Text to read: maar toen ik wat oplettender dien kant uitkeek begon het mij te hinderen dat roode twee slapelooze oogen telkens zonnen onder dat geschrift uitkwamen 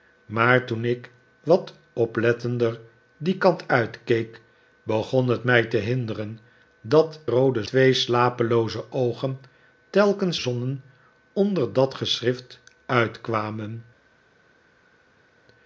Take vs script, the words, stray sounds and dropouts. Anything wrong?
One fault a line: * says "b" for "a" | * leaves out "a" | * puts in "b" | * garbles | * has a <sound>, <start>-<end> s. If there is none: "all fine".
all fine